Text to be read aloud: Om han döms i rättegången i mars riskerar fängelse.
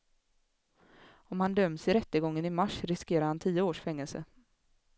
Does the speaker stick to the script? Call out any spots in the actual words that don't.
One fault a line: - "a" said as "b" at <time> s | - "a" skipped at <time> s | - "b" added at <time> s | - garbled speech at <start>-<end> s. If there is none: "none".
- "han tio års" added at 3.3 s